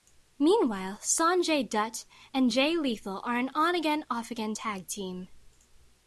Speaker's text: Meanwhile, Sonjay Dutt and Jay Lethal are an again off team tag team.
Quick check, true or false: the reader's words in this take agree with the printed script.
false